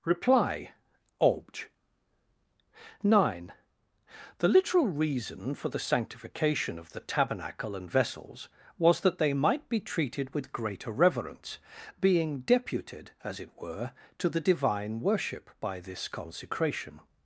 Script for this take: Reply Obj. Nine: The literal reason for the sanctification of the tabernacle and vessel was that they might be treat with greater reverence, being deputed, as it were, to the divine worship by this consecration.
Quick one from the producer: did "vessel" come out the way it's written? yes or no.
no